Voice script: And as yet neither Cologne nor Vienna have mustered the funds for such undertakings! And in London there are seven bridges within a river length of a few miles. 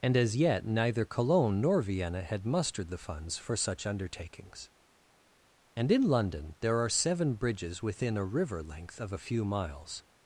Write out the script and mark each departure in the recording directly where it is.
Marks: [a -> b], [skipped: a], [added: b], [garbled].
And as yet neither Cologne nor Vienna [have -> had] mustered the funds for such undertakings! And in London there are seven bridges within a river length of a few miles.